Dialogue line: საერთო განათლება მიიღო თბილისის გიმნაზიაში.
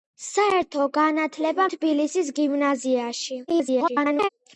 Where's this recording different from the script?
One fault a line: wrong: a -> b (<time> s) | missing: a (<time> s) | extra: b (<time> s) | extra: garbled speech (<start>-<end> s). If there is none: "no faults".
missing: მიიღო (1.7 s)
extra: garbled speech (3.5-4.3 s)